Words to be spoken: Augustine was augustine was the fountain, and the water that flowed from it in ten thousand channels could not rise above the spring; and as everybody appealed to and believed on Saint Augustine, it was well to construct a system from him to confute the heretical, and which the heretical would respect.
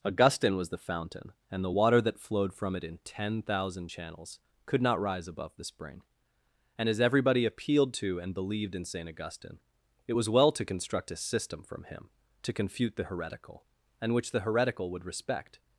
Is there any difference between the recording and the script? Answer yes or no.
yes